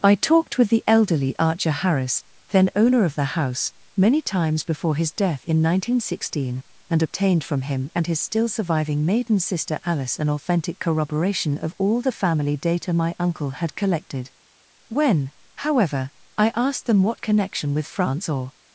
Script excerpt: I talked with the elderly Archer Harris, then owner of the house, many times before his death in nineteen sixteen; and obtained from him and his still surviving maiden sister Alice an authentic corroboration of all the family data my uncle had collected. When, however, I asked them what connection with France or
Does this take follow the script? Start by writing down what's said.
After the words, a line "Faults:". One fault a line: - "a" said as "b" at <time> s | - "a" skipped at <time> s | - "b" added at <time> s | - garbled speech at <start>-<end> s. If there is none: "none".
I talked with the elderly Archer Harris, then owner of the house, many times before his death in nineteen sixteen; and obtained from him and his still surviving maiden sister Alice an authentic corroboration of all the family data my uncle had collected. When, however, I asked them what connection with France or
Faults:
none